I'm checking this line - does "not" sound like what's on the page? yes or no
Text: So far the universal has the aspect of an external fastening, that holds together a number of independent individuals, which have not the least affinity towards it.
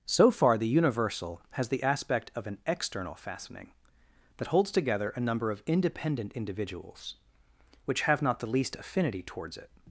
yes